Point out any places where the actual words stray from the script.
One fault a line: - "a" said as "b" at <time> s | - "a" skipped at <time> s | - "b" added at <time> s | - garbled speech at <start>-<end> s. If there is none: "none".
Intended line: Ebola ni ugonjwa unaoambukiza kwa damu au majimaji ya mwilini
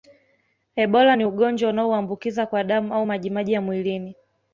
none